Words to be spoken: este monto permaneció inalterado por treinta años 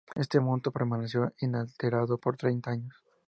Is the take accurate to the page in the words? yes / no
yes